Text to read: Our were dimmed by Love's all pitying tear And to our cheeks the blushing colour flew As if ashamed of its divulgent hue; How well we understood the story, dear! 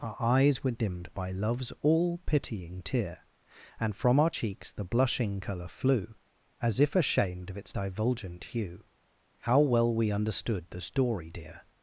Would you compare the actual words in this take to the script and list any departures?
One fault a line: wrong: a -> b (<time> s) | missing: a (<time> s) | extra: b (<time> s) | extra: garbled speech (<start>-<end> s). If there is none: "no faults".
extra: eyes (0.2 s)
wrong: to -> from (4.0 s)